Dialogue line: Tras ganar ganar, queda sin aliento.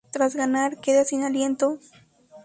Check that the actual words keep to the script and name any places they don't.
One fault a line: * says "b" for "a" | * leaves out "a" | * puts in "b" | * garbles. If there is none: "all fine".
* leaves out "ganar"